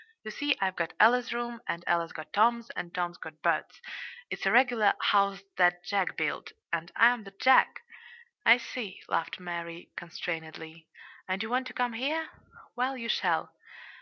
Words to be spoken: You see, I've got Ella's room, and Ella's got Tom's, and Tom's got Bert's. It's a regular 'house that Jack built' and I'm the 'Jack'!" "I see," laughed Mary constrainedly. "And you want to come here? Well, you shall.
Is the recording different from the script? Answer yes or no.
no